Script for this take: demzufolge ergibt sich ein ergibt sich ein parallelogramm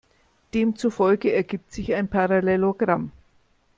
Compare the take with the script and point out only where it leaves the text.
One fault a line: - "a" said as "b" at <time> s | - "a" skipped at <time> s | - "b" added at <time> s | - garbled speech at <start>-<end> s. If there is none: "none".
- "ergibt sich ein" skipped at 2.1 s